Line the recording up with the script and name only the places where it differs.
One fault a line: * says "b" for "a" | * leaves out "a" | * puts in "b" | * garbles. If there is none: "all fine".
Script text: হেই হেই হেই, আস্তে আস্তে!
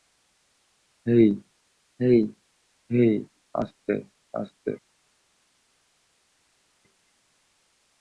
all fine